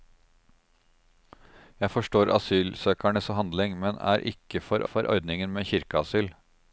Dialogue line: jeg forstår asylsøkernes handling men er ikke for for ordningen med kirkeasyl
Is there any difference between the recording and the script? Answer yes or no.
no